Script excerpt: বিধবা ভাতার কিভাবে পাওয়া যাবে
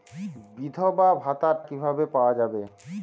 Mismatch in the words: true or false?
false